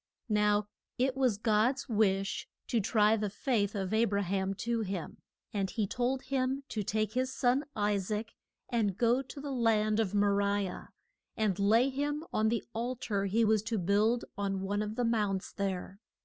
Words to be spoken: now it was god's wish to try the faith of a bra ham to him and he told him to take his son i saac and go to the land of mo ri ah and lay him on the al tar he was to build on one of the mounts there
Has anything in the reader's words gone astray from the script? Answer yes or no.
no